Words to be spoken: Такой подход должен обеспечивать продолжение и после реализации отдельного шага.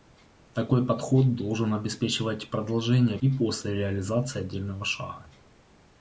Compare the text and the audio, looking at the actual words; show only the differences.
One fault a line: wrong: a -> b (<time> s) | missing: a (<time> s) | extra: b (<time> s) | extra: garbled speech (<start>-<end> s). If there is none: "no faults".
no faults